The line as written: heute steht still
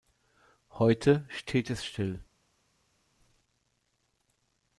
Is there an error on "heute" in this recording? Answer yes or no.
no